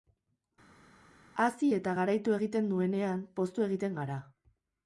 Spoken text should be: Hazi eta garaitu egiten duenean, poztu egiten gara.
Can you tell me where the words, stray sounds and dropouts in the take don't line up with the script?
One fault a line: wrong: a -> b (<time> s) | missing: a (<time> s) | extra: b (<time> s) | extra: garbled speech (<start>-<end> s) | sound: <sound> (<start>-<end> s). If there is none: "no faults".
no faults